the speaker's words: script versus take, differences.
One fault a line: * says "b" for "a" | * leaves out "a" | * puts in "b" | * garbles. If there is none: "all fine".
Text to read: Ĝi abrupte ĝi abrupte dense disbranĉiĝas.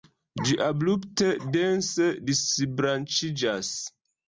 * leaves out "ĝi abrupte"